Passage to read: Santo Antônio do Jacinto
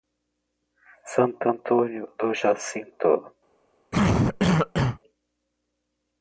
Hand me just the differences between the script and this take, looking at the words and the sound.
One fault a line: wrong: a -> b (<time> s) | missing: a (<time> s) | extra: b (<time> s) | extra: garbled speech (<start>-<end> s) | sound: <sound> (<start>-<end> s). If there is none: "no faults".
sound: cough (3.9-5.0 s)